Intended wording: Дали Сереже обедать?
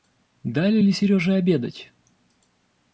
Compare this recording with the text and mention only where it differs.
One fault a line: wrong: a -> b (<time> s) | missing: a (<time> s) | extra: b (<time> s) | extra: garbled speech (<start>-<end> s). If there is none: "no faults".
extra: ли (0.8 s)